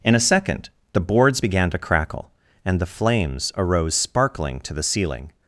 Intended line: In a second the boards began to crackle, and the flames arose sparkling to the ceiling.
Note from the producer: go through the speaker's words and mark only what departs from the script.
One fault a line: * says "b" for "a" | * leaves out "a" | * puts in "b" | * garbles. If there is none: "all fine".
all fine